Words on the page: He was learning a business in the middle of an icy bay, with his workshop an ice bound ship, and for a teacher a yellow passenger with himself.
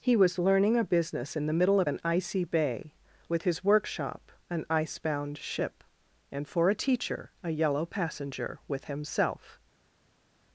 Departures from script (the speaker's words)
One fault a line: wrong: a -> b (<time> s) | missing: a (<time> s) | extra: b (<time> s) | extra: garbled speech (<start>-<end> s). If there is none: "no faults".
no faults